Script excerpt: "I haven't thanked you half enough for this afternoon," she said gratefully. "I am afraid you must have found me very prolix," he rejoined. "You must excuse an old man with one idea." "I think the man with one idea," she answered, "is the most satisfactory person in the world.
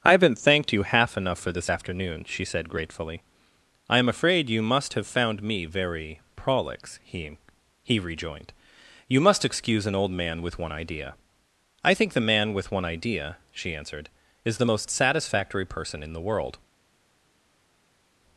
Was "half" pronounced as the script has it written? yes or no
yes